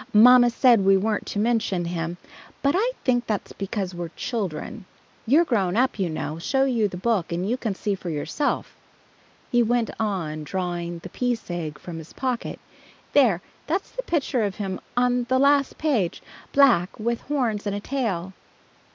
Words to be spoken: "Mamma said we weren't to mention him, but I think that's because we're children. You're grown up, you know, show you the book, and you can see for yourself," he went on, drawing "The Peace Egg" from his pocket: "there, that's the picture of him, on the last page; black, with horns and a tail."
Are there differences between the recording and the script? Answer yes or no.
no